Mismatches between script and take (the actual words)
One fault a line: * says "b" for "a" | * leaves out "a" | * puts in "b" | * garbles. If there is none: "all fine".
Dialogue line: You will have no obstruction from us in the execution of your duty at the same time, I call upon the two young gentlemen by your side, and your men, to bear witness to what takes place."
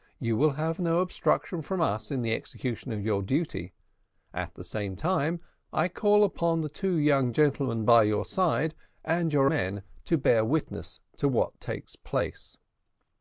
all fine